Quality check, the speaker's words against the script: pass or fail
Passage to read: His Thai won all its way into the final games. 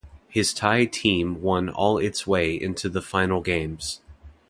fail